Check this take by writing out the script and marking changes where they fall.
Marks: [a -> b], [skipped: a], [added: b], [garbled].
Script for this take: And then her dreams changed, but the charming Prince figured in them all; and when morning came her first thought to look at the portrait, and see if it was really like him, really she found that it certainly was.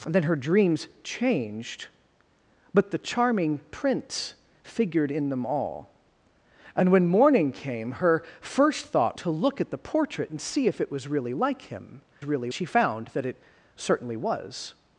And then her dreams changed, but the charming Prince figured in them all; and when morning came her first thought to look at the portrait, and see if it was really like him, really she found that it certainly was.